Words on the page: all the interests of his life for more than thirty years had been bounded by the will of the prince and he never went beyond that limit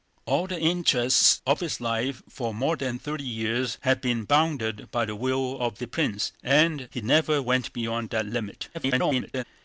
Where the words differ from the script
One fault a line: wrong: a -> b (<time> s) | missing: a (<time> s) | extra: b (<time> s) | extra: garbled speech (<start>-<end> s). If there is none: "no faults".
extra: garbled speech (8.7-9.4 s)